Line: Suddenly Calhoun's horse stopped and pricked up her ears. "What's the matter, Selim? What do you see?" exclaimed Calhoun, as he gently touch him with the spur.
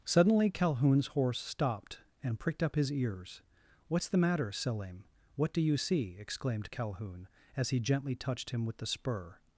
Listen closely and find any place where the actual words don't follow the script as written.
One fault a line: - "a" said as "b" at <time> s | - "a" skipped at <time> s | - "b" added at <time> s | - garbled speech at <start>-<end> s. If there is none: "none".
- "her" said as "his" at 2.8 s
- "touch" said as "touched" at 8.1 s